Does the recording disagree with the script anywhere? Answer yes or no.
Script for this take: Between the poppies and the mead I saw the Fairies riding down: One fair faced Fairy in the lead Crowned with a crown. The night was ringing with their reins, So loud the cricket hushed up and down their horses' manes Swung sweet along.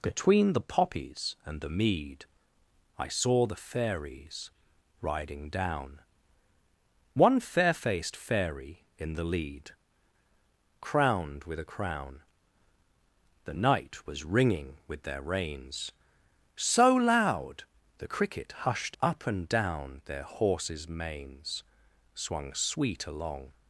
no